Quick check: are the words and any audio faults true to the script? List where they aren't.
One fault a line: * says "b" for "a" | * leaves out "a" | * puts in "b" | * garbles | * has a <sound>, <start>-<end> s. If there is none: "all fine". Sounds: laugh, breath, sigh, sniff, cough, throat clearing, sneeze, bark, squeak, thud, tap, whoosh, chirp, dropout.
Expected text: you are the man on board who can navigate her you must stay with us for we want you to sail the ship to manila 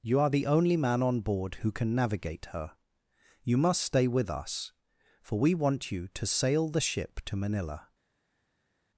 * puts in "only"